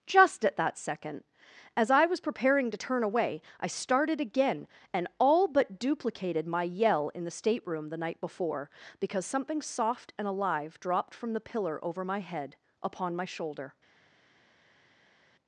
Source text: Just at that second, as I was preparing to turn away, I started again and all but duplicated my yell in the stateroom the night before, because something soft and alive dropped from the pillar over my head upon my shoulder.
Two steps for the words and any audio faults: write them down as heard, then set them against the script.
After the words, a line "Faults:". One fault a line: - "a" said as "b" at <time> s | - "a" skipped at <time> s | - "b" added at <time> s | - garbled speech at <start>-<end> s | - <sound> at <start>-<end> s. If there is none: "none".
Just at that second, as I was preparing to turn away, I started again and all but duplicated my yell in the stateroom the night before, because something soft and alive dropped from the pillar over my head upon my shoulder.
Faults:
none